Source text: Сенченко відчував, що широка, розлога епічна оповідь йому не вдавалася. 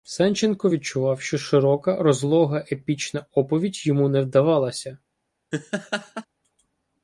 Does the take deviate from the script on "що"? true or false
false